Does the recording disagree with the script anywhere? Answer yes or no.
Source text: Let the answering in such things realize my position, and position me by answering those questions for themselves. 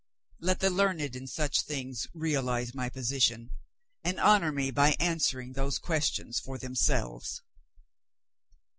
yes